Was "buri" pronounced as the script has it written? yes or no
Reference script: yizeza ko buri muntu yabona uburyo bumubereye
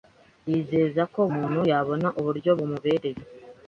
no